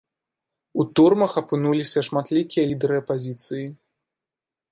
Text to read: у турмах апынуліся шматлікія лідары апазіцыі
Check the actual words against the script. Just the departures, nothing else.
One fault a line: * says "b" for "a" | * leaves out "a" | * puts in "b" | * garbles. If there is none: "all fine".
all fine